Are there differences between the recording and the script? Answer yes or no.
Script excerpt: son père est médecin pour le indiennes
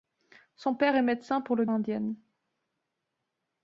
no